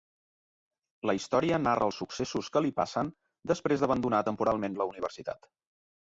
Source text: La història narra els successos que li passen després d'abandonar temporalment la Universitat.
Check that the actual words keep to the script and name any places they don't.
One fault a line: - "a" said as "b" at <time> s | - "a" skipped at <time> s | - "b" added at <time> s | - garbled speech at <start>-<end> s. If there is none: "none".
none